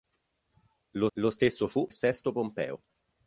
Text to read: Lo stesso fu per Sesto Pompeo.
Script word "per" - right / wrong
wrong